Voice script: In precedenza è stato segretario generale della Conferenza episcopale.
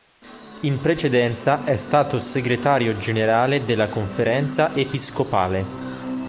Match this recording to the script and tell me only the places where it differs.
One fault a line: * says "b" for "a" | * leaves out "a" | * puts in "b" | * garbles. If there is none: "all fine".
all fine